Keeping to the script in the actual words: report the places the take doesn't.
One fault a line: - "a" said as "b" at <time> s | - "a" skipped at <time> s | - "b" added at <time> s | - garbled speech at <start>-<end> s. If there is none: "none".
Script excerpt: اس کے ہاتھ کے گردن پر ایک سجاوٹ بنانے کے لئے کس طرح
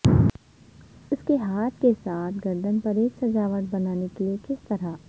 - "ساتھ" added at 2.0 s